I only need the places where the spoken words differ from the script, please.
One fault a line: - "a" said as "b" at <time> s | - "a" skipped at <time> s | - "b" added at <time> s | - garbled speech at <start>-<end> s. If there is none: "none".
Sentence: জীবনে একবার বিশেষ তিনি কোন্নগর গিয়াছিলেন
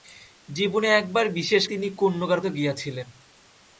none